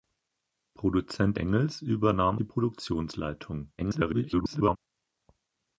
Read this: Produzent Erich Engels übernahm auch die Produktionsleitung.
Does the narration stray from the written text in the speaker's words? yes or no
yes